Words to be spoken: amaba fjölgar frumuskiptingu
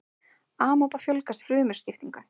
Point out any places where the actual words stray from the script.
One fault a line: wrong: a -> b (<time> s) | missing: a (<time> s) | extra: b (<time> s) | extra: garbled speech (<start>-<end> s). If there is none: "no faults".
no faults